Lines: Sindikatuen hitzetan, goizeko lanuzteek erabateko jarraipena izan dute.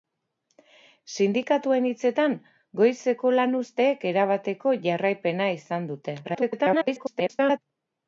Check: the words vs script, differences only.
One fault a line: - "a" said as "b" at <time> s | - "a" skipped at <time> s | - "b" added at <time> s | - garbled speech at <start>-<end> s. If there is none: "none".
- garbled speech at 6.2-7.6 s